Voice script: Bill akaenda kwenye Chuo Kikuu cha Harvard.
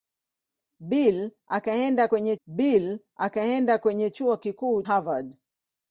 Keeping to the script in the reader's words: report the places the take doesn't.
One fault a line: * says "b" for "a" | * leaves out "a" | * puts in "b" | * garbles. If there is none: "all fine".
* puts in "bill akaenda kwenye"
* leaves out "cha"